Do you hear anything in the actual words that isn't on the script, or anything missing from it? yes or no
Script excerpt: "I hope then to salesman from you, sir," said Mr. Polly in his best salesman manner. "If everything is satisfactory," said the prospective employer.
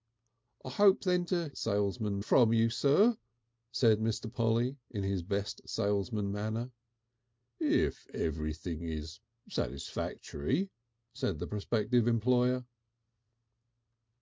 no